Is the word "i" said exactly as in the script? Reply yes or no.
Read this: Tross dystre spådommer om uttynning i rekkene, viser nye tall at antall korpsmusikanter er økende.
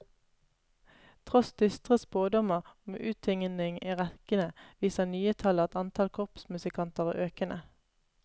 yes